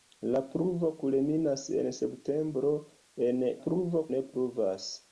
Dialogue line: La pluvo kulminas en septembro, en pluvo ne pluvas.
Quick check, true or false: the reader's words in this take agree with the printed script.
true